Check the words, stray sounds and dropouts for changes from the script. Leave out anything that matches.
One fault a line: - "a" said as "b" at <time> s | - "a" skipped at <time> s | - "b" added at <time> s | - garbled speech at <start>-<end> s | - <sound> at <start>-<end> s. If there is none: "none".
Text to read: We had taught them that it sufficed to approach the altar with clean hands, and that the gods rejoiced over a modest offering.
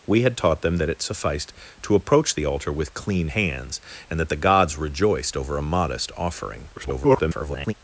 - garbled speech at 6.8-7.7 s